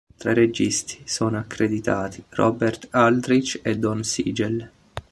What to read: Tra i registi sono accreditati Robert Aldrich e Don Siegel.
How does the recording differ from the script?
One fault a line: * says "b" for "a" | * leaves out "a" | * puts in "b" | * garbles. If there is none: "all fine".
all fine